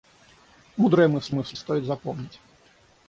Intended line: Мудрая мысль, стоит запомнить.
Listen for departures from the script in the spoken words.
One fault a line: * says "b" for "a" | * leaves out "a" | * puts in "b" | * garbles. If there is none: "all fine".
* puts in "мысль"